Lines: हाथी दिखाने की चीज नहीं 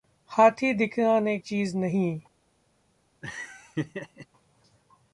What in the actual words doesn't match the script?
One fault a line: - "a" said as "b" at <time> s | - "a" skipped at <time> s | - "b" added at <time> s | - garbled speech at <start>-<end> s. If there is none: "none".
- "की" skipped at 1.4 s